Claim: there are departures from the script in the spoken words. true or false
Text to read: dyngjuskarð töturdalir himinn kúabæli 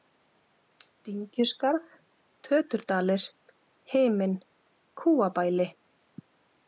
false